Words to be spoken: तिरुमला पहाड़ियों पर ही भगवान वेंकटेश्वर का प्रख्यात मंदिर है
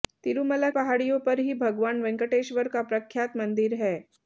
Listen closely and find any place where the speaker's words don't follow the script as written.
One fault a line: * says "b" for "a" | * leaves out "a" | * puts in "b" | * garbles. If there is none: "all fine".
all fine